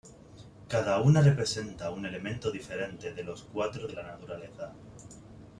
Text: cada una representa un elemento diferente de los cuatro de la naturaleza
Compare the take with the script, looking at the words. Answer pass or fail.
pass